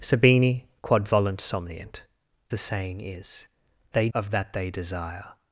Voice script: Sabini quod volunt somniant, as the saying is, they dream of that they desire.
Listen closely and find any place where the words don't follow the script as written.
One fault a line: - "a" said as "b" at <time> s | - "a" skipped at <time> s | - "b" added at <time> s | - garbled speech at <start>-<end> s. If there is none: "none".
- "as" skipped at 2.0 s
- "dream" skipped at 4.1 s